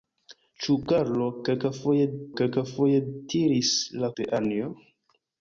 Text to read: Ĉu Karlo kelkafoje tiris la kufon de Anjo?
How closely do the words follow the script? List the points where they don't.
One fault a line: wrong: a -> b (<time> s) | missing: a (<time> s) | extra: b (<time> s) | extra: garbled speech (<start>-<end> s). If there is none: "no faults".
extra: kelkafoje (2.4 s)
missing: kufon (4.1 s)